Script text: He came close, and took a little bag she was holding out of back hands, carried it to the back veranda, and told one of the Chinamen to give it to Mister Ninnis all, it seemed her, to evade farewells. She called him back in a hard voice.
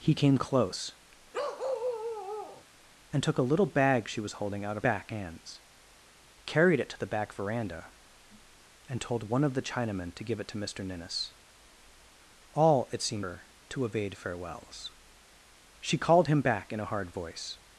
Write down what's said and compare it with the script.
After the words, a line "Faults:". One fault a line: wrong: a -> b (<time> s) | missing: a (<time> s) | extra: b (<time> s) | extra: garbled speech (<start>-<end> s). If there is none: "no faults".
He came close, and took a little bag she was holding out of back hands, carried it to the back veranda, and told one of the Chinamen to give it to Mister Ninnis all, it seemed her, to evade farewells. She called him back in a hard voice.
Faults:
no faults